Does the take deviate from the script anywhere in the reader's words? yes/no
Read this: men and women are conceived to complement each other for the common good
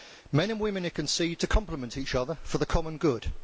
no